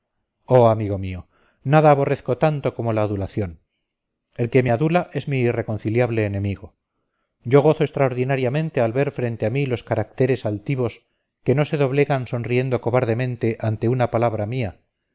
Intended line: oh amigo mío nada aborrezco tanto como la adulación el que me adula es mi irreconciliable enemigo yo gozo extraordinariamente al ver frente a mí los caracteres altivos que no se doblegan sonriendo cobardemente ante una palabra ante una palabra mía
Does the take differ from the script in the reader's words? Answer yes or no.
yes